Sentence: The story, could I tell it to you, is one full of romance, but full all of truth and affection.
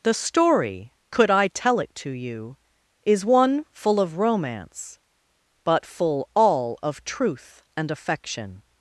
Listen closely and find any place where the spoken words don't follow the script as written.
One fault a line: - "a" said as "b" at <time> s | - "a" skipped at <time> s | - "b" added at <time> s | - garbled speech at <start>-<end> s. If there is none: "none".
none